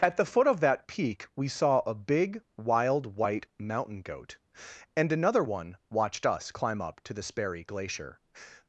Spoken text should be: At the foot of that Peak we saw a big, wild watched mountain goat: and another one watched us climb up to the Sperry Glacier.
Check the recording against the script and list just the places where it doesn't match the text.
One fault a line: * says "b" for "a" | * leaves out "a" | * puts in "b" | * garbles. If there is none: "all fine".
* says "white" for "watched"